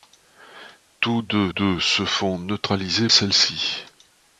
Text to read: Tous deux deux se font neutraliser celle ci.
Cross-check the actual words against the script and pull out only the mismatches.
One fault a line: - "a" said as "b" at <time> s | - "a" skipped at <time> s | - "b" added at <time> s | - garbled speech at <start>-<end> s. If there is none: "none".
none